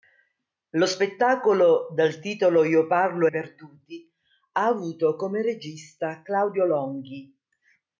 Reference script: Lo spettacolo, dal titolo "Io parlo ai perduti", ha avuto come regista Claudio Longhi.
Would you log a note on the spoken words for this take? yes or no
yes